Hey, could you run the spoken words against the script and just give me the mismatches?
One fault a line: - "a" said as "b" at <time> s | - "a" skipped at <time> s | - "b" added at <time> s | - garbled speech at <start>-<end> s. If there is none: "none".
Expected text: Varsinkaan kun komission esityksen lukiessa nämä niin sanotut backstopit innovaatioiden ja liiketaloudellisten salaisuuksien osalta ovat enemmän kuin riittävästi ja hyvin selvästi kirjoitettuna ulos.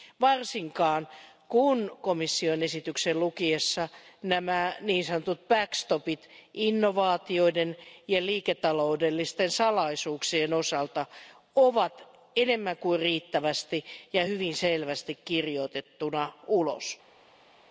none